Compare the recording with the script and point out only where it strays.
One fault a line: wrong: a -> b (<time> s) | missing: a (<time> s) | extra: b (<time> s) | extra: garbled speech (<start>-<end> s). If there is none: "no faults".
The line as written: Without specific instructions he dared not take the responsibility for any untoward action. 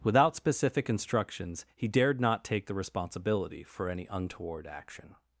no faults